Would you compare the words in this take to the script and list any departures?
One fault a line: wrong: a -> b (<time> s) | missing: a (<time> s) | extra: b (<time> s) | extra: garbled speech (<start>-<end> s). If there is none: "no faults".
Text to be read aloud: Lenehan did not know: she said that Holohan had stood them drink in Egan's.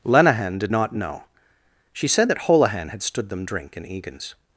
no faults